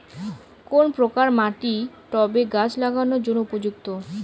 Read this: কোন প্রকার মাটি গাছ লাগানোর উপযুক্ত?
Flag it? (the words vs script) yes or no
yes